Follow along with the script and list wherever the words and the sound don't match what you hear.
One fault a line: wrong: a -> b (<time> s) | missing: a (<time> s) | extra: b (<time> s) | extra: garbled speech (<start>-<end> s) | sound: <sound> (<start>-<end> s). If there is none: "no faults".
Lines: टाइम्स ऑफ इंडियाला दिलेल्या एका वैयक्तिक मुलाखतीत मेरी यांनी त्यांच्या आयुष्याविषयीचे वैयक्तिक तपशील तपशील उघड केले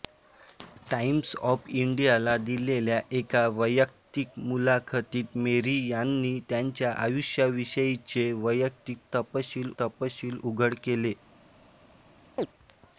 sound: chirp (12.4-12.5 s)